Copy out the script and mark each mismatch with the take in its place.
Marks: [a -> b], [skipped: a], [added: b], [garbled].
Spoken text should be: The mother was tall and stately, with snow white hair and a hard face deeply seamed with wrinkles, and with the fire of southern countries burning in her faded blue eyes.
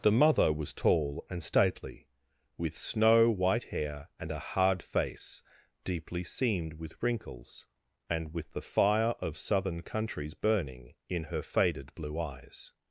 The mother was tall and stately, with snow white hair and a hard face deeply seamed with wrinkles, and with the fire of southern countries burning in her faded blue eyes.